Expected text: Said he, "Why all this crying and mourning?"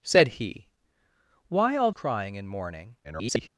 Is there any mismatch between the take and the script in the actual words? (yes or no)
yes